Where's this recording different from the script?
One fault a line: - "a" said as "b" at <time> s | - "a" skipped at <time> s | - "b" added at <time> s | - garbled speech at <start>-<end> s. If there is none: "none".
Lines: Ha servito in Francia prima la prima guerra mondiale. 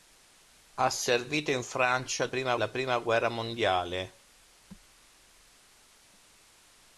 none